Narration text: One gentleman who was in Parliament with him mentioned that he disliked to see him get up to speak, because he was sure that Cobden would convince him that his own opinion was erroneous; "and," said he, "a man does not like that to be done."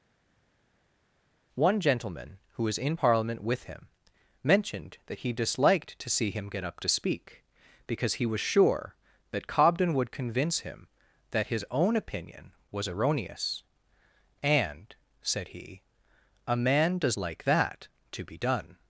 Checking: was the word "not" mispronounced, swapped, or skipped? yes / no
yes